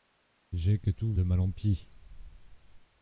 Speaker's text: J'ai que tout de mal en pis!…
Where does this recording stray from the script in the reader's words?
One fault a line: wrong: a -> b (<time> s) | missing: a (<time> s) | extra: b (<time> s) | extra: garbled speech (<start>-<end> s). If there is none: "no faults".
no faults